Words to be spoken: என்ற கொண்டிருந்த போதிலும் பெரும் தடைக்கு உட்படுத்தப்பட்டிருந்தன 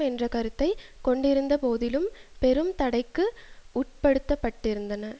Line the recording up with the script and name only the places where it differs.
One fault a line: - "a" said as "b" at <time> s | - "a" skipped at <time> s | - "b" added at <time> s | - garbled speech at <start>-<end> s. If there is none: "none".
- "கருத்தை" added at 0.3 s